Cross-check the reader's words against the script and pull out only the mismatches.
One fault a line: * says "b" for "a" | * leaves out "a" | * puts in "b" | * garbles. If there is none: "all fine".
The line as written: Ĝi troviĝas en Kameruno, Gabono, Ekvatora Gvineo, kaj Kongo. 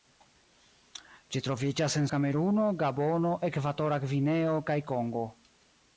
all fine